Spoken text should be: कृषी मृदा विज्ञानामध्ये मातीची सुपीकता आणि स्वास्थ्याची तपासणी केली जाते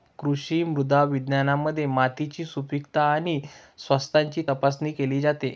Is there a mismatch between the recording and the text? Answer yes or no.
no